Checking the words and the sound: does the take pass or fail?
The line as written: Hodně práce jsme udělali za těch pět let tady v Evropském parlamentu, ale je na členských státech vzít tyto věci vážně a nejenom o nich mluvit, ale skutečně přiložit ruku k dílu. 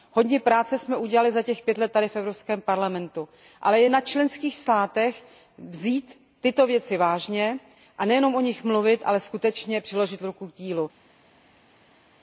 pass